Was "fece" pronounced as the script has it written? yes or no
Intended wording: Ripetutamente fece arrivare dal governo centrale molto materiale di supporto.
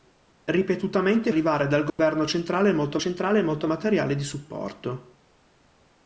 no